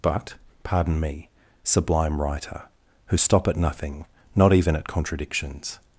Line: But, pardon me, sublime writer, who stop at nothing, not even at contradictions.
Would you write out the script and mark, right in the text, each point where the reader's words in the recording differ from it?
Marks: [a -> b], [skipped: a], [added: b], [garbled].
But, pardon me, sublime writer, who stop at nothing, not even at contradictions.